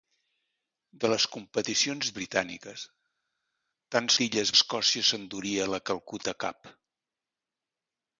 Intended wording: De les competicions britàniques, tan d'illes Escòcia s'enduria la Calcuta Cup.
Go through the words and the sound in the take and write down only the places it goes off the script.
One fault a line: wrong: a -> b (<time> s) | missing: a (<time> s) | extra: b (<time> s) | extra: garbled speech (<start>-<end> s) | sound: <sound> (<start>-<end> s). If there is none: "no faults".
no faults